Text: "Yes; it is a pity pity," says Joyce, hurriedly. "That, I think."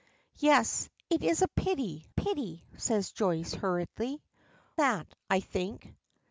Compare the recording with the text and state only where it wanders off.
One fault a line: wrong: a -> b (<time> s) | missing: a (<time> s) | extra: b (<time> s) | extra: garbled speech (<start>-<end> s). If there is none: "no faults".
no faults